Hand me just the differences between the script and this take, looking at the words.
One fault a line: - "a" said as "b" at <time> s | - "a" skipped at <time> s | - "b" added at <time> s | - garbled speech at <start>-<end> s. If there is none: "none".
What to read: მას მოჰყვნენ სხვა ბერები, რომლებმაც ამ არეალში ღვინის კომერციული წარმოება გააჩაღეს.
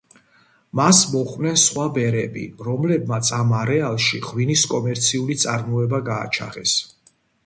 none